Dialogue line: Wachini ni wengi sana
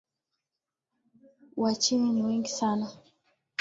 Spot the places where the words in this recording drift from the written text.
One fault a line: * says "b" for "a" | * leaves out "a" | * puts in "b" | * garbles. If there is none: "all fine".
all fine